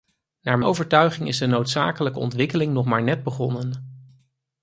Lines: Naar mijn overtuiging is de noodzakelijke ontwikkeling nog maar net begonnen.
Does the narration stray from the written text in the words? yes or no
yes